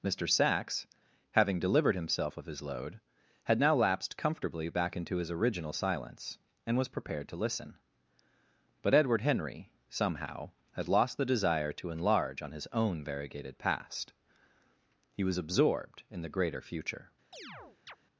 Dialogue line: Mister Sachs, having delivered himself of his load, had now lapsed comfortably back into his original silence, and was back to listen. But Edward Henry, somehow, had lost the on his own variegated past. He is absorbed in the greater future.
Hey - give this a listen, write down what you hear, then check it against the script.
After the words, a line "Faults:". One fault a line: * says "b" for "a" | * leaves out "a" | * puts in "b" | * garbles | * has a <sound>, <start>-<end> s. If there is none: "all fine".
Mister Sachs, having delivered himself of his load, had now lapsed comfortably back into his original silence, and was prepared to listen. But Edward Henry, somehow, had lost the desire to enlarge on his own variegated past. He was absorbed in the greater future.
Faults:
* says "prepared" for "back"
* puts in "desire to enlarge"
* says "was" for "is"
* has a chirp, 17.3-18.0 s